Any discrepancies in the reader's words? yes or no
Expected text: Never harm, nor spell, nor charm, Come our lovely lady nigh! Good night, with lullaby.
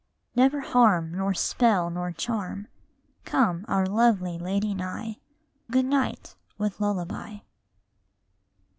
no